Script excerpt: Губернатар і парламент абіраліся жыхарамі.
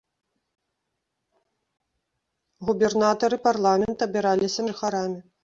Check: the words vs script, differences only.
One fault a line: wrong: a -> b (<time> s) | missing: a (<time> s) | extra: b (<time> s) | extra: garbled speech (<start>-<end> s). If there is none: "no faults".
no faults